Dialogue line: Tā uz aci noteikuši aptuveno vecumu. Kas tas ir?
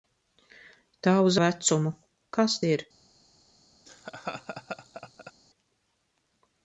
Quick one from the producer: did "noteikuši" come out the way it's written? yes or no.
no